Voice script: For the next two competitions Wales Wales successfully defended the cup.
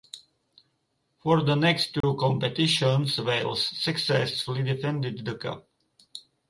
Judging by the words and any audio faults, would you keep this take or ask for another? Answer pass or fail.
fail